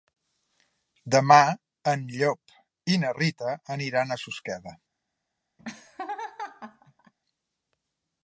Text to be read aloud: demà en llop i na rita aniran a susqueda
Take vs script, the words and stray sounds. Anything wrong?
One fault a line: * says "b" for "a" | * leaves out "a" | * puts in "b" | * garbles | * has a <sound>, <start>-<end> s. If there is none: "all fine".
* has a laugh, 5.6-7.1 s